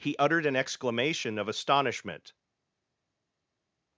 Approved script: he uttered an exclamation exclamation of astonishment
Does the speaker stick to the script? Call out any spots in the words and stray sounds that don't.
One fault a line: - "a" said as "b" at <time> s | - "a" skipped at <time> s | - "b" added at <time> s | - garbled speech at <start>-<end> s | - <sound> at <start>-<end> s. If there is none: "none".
- "exclamation" skipped at 1.4 s